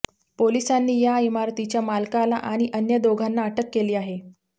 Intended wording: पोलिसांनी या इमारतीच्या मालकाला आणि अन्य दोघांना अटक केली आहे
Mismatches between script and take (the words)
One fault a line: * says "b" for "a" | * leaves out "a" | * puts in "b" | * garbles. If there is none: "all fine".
all fine